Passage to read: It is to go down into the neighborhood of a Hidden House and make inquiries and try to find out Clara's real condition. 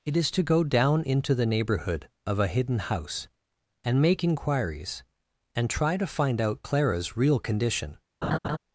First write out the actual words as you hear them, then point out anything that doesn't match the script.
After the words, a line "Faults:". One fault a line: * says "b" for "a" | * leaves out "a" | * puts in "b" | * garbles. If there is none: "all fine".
It is to go down into the neighborhood of a Hidden House and make inquiries and try to find out Clara's real condition.
Faults:
all fine